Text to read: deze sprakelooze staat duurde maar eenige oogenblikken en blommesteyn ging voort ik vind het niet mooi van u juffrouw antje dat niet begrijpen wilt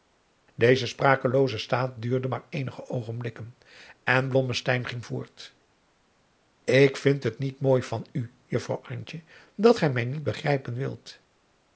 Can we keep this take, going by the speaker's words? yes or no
no